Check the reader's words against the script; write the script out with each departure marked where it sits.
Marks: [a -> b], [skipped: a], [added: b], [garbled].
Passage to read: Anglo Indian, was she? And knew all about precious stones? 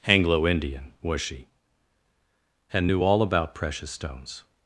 Anglo Indian, was she? And knew all about precious stones?